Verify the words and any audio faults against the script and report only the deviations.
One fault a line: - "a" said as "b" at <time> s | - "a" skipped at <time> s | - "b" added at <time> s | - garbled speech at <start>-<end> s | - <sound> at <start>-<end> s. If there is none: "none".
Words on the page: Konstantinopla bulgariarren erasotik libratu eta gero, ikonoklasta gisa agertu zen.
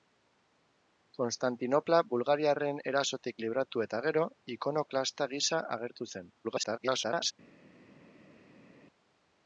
- garbled speech at 6.4-7.3 s